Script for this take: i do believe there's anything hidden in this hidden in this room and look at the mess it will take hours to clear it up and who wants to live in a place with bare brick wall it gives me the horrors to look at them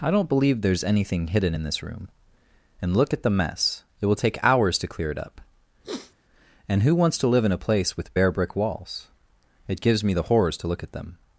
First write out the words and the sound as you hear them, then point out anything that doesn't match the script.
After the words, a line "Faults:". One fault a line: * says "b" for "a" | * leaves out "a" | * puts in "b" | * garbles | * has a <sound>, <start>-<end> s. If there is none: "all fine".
i don't believe there's anything hidden in this room and look at the mess it will take hours to clear it up and who wants to live in a place with bare brick walls it gives me the horrors to look at them
Faults:
* says "don't" for "do"
* leaves out "hidden in this"
* has a sniff, 5.8-6.2 s
* says "walls" for "wall"